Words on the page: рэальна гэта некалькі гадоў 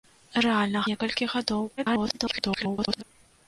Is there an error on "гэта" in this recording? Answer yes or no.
yes